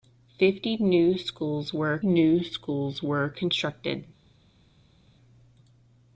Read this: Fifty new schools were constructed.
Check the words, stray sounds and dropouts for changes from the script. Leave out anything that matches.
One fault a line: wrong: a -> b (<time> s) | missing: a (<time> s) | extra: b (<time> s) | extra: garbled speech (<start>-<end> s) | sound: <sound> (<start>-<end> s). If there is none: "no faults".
extra: new schools were (2.0 s)